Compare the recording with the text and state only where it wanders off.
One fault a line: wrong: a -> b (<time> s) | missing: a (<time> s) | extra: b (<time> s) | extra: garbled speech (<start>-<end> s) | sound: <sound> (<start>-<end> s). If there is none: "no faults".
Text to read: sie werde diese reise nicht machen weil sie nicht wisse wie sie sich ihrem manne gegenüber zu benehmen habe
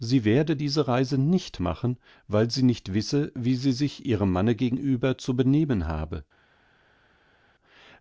no faults